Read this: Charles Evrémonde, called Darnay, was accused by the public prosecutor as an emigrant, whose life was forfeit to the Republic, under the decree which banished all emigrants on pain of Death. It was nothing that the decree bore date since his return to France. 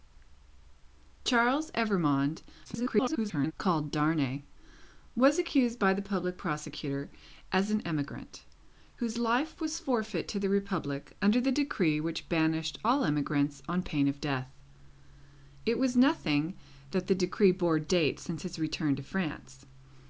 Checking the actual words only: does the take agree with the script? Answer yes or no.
no